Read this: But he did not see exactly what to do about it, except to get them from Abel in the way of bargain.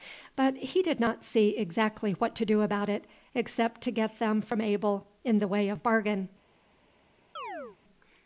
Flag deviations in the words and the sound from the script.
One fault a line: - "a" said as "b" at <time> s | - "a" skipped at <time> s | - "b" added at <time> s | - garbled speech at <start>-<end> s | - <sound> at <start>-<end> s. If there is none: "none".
- chirp at 7.4-7.8 s